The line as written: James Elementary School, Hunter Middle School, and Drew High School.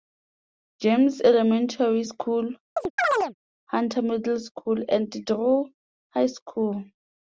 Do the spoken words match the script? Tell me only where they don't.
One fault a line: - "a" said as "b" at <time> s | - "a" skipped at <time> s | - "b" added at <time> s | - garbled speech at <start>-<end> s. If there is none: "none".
none